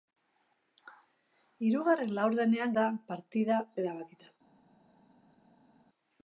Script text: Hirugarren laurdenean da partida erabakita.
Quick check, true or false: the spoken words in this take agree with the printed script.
true